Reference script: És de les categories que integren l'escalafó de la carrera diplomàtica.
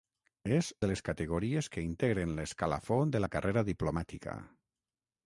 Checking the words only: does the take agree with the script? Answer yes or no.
yes